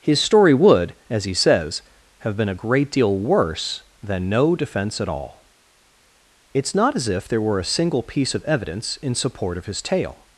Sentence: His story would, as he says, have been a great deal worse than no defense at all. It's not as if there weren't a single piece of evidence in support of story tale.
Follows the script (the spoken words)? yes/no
no